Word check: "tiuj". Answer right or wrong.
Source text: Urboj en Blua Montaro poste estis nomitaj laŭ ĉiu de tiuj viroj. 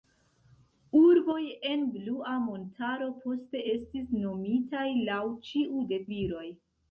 wrong